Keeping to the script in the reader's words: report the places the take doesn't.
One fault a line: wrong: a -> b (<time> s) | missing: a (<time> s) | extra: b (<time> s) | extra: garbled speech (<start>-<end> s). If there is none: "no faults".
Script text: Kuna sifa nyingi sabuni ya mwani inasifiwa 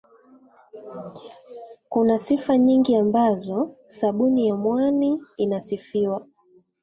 extra: ambazo (3.0 s)